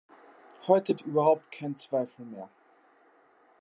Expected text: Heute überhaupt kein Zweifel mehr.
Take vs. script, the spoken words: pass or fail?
pass